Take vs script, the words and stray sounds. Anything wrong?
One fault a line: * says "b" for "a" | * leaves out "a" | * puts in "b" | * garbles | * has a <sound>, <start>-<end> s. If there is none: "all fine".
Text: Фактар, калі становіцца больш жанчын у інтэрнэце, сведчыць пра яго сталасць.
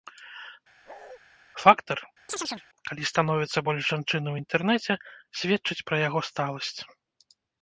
* has a bark, 0.9-1.2 s
* has a chirp, 2.3-2.7 s